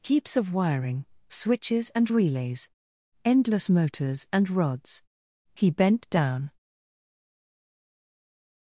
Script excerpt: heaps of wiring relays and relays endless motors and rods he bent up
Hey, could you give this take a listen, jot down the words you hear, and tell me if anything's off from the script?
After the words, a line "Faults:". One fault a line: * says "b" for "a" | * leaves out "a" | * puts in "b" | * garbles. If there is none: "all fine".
heaps of wiring switches and relays endless motors and rods he bent down
Faults:
* says "switches" for "relays"
* says "down" for "up"